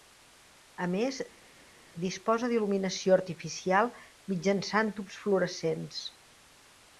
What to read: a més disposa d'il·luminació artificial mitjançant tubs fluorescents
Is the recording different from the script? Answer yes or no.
no